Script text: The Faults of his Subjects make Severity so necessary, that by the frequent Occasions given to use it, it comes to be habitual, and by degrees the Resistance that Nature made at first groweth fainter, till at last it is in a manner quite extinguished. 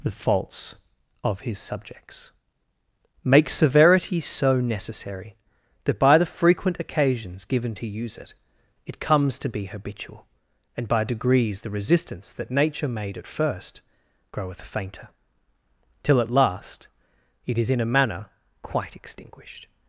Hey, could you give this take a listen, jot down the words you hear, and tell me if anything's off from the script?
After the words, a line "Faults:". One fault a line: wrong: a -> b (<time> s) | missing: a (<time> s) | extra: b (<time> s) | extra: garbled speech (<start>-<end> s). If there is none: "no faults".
The Faults of his Subjects make Severity so necessary, that by the frequent Occasions given to use it, it comes to be habitual, and by degrees the Resistance that Nature made at first groweth fainter, till at last it is in a manner quite extinguished.
Faults:
no faults